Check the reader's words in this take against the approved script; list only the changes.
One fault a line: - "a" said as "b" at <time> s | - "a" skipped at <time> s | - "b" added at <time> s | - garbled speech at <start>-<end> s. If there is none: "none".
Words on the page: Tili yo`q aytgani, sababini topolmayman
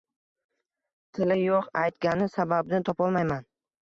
none